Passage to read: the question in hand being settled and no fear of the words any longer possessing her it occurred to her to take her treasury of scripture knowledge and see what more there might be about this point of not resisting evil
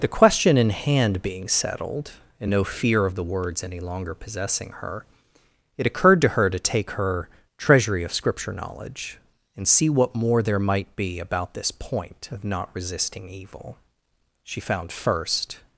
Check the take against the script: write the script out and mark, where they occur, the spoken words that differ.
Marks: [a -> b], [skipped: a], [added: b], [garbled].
the question in hand being settled and no fear of the words any longer possessing her it occurred to her to take her treasury of scripture knowledge and see what more there might be about this point of not resisting evil [added: she found first]